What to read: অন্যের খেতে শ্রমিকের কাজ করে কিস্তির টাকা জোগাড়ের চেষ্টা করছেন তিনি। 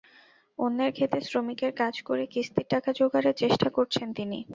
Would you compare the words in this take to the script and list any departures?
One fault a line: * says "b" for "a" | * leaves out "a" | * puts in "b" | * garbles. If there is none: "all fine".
all fine